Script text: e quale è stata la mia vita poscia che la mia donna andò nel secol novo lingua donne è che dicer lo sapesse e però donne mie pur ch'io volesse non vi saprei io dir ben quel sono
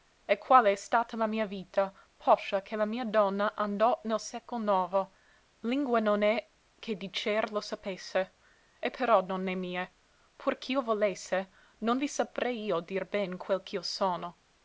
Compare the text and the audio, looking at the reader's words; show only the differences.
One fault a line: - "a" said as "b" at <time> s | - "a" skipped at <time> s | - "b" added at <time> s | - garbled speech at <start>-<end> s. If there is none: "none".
- "donne" said as "non" at 6.0 s
- "ch'io" added at 13.6 s